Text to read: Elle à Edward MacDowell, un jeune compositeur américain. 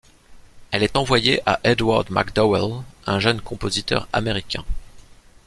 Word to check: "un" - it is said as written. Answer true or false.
true